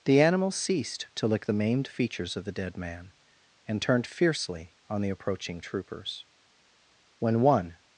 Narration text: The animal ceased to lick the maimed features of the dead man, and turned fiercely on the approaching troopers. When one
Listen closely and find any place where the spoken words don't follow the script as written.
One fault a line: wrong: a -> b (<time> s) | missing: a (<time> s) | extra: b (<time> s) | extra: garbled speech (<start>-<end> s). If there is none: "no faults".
no faults